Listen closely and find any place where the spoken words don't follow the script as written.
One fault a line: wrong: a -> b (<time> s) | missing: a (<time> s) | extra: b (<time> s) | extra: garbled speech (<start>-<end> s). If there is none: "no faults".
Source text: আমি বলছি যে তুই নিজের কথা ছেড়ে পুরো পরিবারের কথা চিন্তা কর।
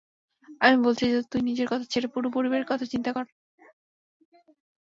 no faults